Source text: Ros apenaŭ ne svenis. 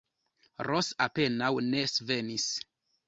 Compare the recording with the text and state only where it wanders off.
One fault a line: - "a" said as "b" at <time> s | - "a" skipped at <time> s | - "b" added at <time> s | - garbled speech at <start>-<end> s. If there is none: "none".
none